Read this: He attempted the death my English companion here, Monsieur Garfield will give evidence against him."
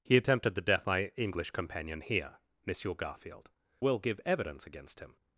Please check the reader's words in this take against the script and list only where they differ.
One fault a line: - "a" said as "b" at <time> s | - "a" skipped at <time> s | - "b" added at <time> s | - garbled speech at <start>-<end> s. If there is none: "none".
none